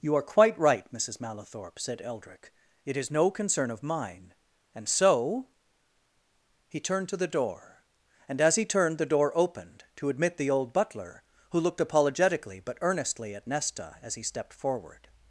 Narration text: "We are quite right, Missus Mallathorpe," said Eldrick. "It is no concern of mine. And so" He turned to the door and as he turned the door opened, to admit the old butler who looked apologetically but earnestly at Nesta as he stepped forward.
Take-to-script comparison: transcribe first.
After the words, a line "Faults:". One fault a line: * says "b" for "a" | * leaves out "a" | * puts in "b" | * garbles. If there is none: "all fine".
"You are quite right, Missus Mallathorpe," said Eldrick. "It is no concern of mine. And so" He turned to the door and as he turned the door opened, to admit the old butler who looked apologetically but earnestly at Nesta as he stepped forward.
Faults:
* says "You" for "We"